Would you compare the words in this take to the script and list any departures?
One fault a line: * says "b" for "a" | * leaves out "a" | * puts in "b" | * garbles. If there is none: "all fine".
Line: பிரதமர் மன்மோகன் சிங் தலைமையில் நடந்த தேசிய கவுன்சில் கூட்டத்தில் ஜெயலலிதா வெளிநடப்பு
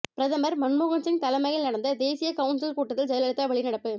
all fine